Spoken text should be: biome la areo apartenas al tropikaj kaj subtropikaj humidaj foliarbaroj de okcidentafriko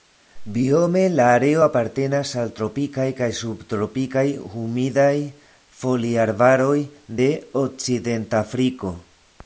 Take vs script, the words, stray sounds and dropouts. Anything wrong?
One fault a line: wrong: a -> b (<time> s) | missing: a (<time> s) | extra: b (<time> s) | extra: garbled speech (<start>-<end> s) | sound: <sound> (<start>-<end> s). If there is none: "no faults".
no faults